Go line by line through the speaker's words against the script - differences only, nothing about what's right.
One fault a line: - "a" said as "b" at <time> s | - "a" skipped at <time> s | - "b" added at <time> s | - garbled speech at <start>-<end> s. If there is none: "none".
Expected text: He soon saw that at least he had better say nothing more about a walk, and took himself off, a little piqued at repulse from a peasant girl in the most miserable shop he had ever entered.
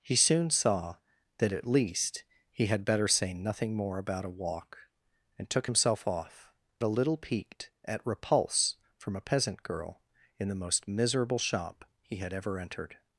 none